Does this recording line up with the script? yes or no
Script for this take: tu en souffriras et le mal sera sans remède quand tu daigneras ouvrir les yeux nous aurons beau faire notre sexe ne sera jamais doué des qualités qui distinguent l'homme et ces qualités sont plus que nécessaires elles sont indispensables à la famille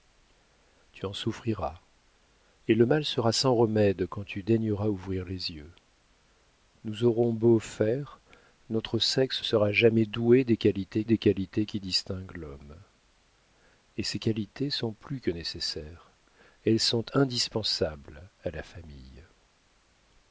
no